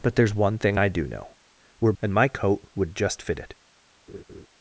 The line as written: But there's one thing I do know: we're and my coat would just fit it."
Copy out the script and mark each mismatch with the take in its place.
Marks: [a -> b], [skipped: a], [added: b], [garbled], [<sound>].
But there's one thing I do know: we're and my coat would just fit it." [laugh]